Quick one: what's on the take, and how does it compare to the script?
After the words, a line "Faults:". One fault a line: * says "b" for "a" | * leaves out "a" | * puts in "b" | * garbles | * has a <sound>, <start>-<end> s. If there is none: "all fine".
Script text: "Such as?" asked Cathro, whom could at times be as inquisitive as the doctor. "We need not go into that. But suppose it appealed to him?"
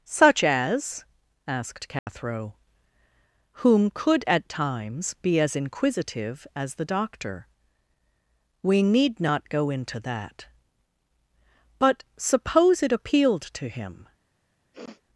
"Such as?" asked Cathro, whom could at times be as inquisitive as the doctor. "We need not go into that. But suppose it appealed to him?"
Faults:
* has a dropout, 2.0-2.1 s
* has a sniff, 14.7-15.0 s